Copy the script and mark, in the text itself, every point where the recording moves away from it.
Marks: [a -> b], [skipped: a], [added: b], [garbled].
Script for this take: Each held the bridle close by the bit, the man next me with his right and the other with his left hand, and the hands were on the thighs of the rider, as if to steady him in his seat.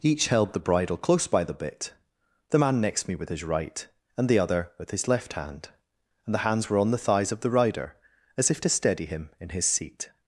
Each held the bridle close by the bit, the man next me with his right and the other with his left hand, and the hands were on the thighs of the rider, as if to steady him in his seat.